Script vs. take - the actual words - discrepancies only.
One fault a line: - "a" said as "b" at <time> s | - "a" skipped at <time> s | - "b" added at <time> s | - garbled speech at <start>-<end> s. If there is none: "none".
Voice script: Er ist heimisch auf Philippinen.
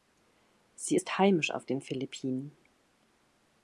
- "Er" said as "Sie" at 0.7 s
- "den" added at 1.6 s